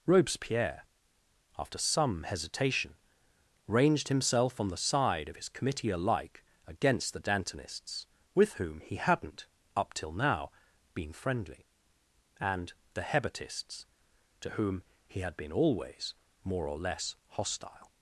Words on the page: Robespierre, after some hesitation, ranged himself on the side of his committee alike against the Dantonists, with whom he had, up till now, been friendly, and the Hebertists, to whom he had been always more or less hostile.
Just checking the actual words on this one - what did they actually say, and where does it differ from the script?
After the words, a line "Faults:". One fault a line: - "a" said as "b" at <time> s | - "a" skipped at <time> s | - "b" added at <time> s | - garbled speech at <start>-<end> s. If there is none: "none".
Robespierre, after some hesitation, ranged himself on the side of his committee alike against the Dantonists, with whom he hadn't, up till now, been friendly, and the Hebertists, to whom he had been always more or less hostile.
Faults:
- "had" said as "hadn't" at 9.0 s